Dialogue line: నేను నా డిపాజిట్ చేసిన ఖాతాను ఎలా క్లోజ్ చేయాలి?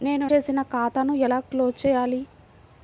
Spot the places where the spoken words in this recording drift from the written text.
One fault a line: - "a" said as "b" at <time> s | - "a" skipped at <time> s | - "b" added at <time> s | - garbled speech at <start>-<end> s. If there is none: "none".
- "నా డిపాజిట్" skipped at 0.2 s